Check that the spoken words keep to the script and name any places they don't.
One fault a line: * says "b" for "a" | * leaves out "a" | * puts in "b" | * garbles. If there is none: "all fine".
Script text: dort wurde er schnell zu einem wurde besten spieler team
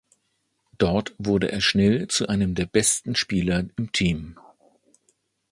* says "der" for "wurde"
* puts in "im"